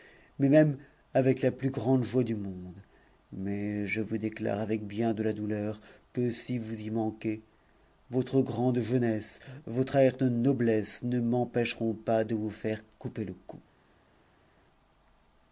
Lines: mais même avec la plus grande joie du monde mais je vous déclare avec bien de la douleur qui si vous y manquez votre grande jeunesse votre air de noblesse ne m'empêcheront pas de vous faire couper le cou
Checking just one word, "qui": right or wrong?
wrong